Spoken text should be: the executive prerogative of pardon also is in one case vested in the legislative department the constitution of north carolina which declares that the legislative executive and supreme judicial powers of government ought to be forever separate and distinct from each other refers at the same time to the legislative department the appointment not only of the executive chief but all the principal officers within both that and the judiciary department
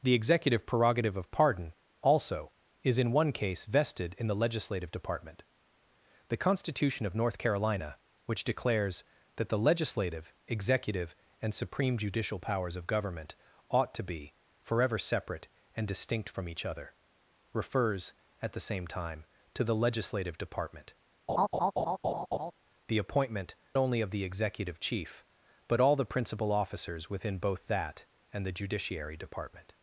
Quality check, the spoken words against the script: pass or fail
fail